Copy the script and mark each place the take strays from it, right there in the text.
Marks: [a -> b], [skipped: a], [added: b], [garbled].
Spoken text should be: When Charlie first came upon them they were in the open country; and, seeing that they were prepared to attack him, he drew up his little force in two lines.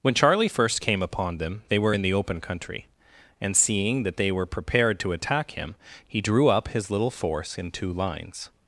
When Charlie first came upon them they were in the open country; and, seeing that they were prepared to attack him, he drew up his little force in two lines.